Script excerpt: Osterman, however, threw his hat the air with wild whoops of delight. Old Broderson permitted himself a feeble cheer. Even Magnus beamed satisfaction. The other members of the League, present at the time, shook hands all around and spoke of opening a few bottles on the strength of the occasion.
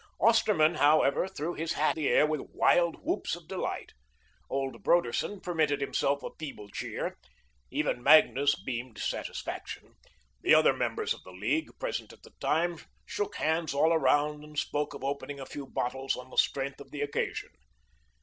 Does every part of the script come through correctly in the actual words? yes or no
yes